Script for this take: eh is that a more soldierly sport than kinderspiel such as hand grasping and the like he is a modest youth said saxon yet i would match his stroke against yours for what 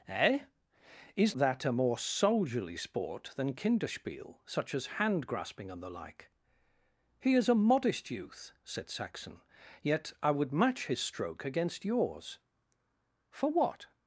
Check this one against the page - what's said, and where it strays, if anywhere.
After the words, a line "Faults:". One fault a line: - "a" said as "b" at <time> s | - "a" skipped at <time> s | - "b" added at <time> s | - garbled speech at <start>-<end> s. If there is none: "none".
eh is that a more soldierly sport than kinderspiel such as hand grasping and the like he is a modest youth said saxon yet i would match his stroke against yours for what
Faults:
none